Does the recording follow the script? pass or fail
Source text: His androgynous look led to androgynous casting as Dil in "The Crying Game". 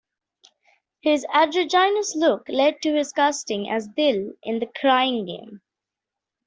fail